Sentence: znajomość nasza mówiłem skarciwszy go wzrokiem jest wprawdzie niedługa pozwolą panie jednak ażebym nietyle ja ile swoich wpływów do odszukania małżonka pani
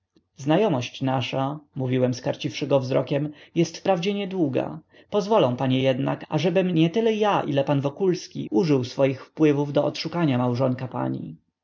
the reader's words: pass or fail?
fail